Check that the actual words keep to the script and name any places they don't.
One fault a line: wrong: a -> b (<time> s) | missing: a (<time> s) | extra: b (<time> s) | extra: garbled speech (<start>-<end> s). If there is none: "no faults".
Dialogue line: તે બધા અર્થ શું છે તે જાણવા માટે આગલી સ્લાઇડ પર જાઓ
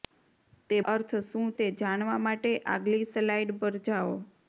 missing: બધા (0.8 s)
missing: છે (1.5 s)